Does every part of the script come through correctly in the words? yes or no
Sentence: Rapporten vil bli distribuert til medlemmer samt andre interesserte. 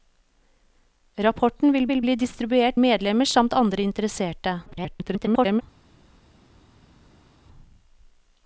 no